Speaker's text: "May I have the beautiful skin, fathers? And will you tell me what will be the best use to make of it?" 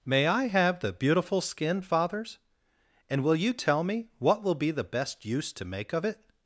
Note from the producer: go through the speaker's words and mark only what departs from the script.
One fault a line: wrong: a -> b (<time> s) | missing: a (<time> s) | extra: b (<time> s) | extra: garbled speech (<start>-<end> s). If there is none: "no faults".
no faults